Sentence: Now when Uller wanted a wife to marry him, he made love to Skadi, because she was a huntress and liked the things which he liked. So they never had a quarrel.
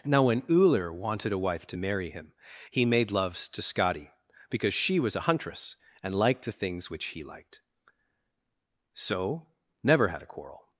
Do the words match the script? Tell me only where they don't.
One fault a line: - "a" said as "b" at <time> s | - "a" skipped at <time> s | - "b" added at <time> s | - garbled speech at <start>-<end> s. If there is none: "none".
- "love" said as "loves" at 3.1 s
- "they" skipped at 9.5 s